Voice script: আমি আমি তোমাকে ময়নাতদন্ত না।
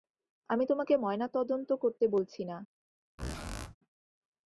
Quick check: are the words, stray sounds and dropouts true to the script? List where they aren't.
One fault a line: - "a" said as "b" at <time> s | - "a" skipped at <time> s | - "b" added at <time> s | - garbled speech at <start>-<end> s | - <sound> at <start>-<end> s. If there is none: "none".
- "আমি" skipped at 0.7 s
- "করতে বলছি" added at 1.7 s
- squeak at 3.2-3.8 s